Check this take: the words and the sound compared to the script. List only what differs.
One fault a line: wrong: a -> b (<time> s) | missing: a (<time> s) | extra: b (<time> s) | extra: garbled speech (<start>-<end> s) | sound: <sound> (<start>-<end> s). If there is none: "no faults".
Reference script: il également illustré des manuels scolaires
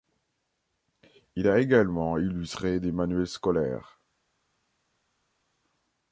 extra: a (1.5 s)